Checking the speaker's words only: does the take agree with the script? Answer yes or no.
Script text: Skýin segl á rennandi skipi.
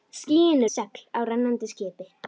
yes